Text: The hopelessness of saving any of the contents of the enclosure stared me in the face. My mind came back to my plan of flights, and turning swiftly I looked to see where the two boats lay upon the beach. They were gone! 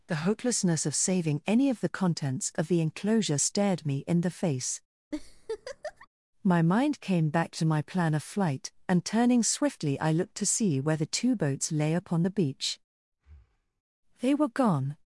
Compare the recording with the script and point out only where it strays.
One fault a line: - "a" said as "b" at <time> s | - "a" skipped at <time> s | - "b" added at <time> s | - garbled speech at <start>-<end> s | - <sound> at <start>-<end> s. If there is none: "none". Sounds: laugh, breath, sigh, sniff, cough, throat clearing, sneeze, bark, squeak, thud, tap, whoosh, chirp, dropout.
- laugh at 5.1-6.1 s
- "flights" said as "flight" at 8.2 s
- breath at 13.1-13.8 s